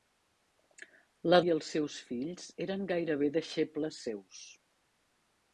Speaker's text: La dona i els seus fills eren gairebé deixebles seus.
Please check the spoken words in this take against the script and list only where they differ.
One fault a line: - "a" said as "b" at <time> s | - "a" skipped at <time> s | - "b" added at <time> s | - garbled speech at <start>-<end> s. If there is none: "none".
- "dona" skipped at 1.4 s